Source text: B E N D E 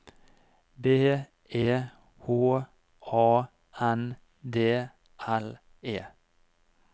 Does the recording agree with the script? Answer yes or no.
no